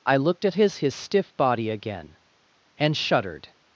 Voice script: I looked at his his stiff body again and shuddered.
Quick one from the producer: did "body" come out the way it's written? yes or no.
yes